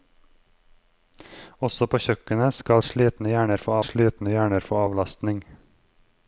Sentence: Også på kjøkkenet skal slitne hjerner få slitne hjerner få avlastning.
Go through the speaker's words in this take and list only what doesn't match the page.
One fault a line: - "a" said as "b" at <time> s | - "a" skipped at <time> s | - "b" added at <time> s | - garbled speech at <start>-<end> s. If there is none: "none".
none